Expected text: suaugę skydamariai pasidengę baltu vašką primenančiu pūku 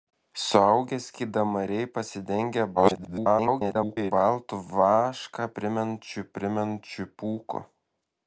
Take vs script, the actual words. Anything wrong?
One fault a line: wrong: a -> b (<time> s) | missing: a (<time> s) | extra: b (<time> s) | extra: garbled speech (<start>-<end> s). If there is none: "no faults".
extra: garbled speech (2.8-4.1 s)
extra: primenančiu (6.4 s)